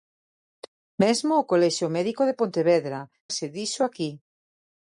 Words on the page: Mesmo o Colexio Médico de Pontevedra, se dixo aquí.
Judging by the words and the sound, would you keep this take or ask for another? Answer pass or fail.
pass